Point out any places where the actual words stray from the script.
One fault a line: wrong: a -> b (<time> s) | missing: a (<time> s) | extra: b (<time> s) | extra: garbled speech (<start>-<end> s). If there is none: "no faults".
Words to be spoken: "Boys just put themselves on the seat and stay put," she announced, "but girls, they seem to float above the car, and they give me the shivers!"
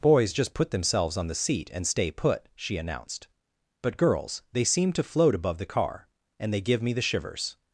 no faults